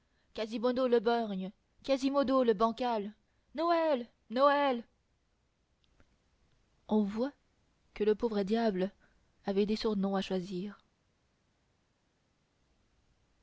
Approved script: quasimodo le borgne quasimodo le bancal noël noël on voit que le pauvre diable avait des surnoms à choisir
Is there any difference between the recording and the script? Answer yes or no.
no